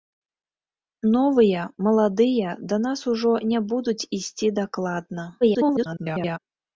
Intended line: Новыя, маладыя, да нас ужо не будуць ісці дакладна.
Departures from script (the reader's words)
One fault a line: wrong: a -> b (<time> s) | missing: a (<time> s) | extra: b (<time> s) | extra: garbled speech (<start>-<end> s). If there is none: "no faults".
extra: garbled speech (5.4-6.4 s)